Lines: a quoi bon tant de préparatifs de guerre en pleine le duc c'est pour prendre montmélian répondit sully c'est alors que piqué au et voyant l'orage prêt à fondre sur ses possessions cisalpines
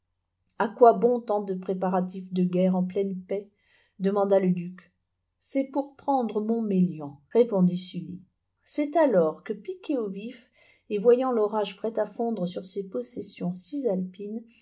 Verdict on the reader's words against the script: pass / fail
fail